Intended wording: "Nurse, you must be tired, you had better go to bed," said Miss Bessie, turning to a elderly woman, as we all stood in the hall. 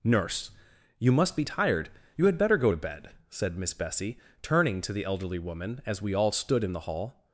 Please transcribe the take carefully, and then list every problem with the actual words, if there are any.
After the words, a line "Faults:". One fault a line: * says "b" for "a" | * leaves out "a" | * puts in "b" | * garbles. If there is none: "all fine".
"Nurse, you must be tired, you had better go to bed," said Miss Bessie, turning to the elderly woman, as we all stood in the hall.
Faults:
* says "the" for "a"